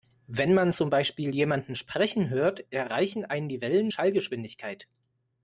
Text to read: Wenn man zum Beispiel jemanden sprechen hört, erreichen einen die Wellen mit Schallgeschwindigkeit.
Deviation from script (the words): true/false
true